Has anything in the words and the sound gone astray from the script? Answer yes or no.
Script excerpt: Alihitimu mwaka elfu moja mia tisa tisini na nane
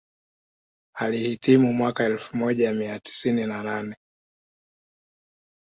yes